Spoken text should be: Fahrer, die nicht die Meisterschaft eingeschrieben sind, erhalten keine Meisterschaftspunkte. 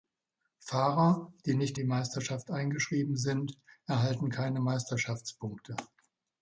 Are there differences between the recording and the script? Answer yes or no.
no